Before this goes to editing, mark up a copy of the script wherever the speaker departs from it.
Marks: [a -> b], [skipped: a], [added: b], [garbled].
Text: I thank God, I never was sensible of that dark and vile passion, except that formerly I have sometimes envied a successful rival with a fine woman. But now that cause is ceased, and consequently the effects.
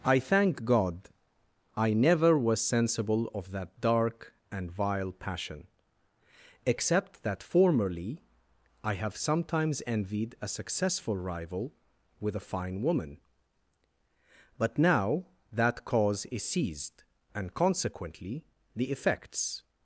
I thank God, I never was sensible of that dark and vile passion, except that formerly I have sometimes envied a successful rival with a fine woman. But now that cause is ceased, and consequently the effects.